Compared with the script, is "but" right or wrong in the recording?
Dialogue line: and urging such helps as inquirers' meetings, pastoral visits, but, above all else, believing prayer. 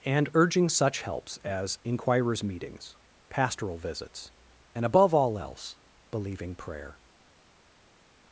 wrong